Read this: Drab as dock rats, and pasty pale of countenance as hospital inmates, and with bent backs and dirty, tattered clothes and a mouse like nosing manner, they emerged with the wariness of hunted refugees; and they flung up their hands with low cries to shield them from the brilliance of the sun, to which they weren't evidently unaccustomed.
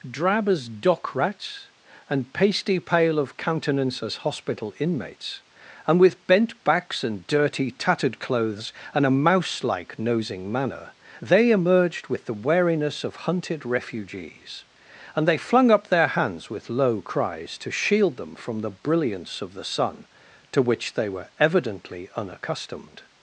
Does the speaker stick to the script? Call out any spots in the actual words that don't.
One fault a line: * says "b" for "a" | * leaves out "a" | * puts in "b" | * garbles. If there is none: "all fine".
* says "were" for "weren't"